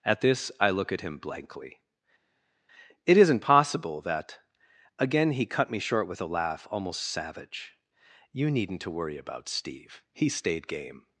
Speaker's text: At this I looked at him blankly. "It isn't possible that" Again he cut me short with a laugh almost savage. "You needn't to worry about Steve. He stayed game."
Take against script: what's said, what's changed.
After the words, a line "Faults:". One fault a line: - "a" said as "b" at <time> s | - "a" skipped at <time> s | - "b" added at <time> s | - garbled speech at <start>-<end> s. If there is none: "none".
At this I look at him blankly. "It isn't possible that" Again he cut me short with a laugh almost savage. "You needn't to worry about Steve. He stayed game."
Faults:
- "looked" said as "look" at 0.7 s